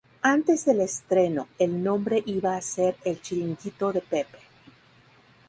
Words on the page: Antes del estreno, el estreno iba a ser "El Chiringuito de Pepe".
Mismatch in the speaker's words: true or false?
true